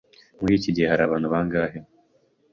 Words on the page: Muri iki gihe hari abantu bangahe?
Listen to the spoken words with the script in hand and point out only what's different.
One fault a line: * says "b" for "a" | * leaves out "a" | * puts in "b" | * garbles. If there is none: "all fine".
all fine